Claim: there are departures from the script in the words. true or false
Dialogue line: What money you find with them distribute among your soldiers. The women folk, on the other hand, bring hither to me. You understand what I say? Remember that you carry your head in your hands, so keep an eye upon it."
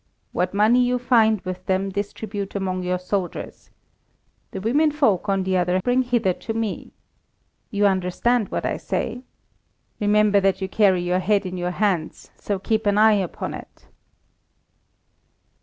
true